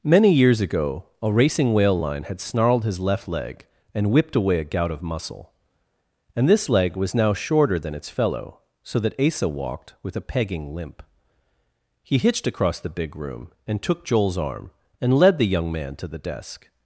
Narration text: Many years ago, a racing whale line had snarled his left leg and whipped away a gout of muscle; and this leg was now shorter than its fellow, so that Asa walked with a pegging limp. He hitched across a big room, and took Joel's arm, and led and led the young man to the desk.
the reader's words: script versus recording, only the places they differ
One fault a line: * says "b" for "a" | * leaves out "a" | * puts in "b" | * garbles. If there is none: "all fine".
* says "the" for "a"
* leaves out "and led"